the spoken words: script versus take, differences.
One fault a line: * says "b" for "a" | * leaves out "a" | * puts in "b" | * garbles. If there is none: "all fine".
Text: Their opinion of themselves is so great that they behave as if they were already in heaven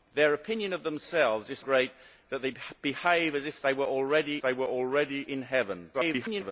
* leaves out "so"
* puts in "they were already"
* garbles